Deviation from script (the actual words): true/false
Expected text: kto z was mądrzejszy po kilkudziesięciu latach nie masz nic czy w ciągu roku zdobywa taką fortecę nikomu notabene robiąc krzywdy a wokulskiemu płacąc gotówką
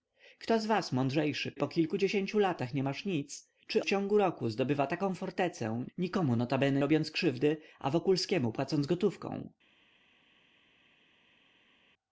false